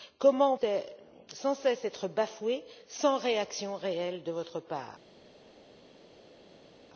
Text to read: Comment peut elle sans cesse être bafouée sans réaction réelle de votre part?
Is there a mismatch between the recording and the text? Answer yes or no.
yes